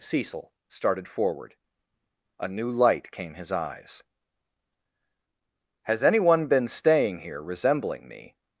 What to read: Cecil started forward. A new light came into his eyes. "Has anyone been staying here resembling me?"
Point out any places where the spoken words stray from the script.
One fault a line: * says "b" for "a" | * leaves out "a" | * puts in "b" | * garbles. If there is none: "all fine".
* leaves out "into"